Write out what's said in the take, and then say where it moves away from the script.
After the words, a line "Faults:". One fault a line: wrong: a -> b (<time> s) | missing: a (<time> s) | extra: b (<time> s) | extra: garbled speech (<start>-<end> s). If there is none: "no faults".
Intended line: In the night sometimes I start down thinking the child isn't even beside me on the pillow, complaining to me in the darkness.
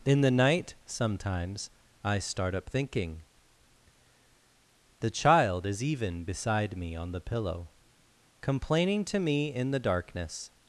In the night sometimes I start up thinking the child is even beside me on the pillow, complaining to me in the darkness.
Faults:
wrong: down -> up (2.5 s)
wrong: isn't -> is (5.7 s)